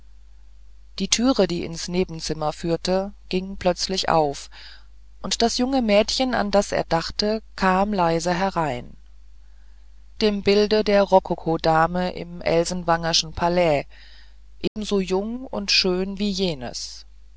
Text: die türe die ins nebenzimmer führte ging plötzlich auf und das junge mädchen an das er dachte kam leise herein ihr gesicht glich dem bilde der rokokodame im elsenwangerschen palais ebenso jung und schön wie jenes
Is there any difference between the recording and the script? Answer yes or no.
yes